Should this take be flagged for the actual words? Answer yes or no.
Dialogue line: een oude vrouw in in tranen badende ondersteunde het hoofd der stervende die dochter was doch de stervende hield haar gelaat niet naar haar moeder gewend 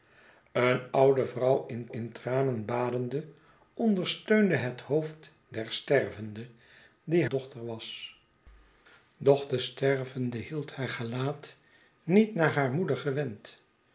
no